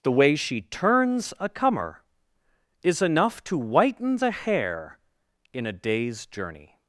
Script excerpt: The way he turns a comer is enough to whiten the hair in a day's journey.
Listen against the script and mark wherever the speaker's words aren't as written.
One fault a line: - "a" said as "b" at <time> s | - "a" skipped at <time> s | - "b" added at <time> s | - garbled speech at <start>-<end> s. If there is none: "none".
- "he" said as "she" at 0.3 s